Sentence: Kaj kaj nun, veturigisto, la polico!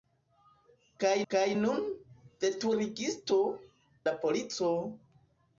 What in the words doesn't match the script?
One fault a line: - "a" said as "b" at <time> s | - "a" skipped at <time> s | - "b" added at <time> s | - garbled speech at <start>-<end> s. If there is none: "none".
none